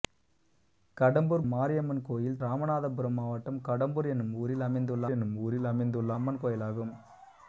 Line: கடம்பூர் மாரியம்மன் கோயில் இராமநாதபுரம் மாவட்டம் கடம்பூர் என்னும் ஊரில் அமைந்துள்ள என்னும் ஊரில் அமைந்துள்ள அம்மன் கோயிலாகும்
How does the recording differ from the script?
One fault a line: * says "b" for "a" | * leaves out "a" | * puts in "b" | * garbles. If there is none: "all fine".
all fine